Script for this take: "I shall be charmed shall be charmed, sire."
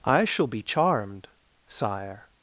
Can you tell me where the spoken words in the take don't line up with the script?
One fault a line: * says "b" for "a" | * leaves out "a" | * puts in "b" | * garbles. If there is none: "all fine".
* leaves out "shall be charmed"